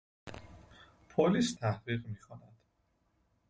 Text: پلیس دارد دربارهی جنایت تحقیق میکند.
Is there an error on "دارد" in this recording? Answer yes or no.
yes